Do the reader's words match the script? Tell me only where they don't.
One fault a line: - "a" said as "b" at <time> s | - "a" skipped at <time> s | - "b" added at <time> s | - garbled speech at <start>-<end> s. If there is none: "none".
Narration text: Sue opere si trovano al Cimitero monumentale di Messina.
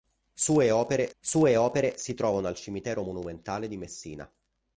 - "sue opere" added at 1.2 s